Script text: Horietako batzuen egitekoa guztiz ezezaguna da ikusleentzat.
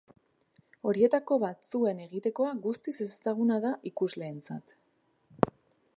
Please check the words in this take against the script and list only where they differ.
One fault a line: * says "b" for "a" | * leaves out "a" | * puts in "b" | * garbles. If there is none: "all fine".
all fine